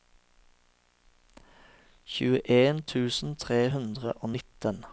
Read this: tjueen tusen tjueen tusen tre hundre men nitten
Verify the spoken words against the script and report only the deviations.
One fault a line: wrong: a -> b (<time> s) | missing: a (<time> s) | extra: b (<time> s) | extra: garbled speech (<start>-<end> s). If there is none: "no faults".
missing: tjueen tusen (3.3 s)
wrong: men -> og (4.1 s)